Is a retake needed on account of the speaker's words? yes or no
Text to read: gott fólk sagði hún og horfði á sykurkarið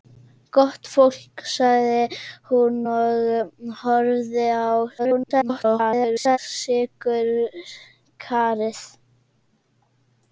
yes